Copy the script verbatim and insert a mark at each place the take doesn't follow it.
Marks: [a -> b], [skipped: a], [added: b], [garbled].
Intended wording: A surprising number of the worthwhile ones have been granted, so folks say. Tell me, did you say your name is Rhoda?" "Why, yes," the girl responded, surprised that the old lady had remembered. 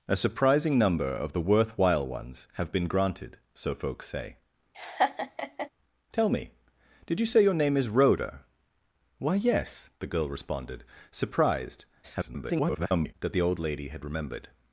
A surprising number of the worthwhile ones have been granted, so folks say. Tell me, did you say your name is Rhoda?" "Why, yes," the girl responded, surprised [garbled] that the old lady had remembered.